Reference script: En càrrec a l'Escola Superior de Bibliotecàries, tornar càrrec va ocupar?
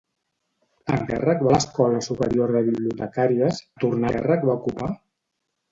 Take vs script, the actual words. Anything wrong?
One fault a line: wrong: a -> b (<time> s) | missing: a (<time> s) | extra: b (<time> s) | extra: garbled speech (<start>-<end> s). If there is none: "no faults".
no faults